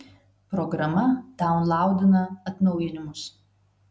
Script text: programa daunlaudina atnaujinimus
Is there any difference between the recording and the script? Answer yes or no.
no